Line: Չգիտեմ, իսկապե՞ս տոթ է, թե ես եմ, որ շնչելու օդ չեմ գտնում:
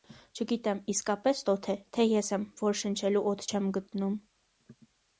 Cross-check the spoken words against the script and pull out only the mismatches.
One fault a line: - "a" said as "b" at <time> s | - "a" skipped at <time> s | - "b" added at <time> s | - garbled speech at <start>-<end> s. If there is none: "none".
none